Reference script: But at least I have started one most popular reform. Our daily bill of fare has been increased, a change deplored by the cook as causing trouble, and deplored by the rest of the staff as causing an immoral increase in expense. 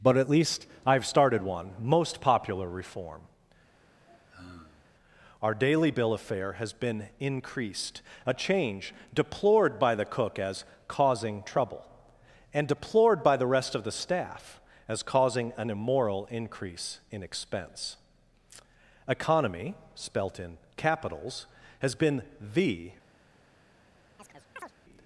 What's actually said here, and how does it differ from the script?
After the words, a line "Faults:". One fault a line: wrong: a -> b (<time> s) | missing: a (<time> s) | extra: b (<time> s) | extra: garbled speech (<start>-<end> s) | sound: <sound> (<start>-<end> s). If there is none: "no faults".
But at least I have started one most popular reform. Our daily bill of fare has been increased, a change deplored by the cook as causing trouble, and deplored by the rest of the staff as causing an immoral increase in expense. ECONOMY spelt in capitals has been the
Faults:
sound: sigh (3.8-4.9 s)
extra: ECONOMY spelt in capitals has been the (19.1 s)
sound: chirp (24.2-24.7 s)